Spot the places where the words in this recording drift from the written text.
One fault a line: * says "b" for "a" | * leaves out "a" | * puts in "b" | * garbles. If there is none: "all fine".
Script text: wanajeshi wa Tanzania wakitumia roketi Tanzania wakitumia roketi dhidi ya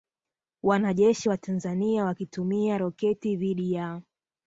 * leaves out "Tanzania wakitumia roketi"